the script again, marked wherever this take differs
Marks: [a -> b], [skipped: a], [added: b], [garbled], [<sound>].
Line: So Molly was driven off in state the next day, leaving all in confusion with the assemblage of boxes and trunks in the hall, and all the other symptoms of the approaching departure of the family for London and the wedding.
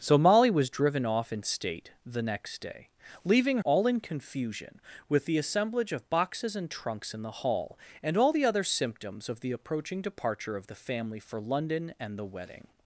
So Molly was driven off in state the next day, leaving all in confusion with the assemblage of boxes and trunks in the hall, and all the other symptoms of the approaching departure of the family for London and the wedding.